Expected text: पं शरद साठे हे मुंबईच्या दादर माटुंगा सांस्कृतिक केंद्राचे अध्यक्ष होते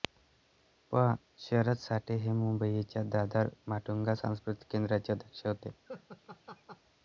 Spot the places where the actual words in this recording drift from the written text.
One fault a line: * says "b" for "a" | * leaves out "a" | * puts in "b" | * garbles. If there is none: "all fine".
all fine